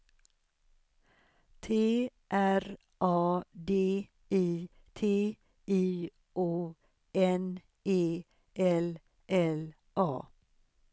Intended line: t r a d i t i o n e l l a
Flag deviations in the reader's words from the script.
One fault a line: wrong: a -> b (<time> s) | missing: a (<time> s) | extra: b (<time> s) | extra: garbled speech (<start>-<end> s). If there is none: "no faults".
no faults